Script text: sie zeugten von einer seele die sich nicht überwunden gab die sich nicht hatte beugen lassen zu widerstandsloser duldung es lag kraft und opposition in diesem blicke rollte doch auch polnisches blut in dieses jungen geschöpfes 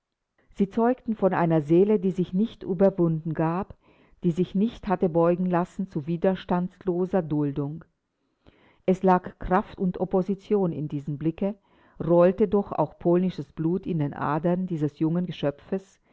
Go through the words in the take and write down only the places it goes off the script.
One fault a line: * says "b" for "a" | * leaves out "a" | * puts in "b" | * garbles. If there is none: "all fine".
* puts in "den adern"